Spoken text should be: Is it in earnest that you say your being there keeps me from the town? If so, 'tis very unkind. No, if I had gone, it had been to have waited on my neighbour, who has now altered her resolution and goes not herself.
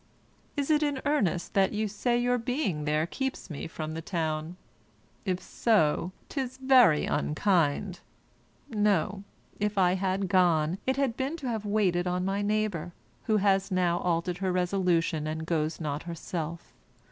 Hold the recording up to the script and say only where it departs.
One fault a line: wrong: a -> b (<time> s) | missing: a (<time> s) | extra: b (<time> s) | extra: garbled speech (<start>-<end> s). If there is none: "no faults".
no faults